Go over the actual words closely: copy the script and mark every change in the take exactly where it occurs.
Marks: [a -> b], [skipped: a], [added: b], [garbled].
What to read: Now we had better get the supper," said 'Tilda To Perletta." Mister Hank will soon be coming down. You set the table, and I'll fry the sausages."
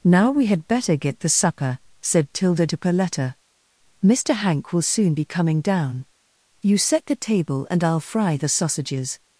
Now we had better get the supper," said 'Tilda To Perletta." Mister Hank will soon be coming down. You set the table, and I'll fry the sausages."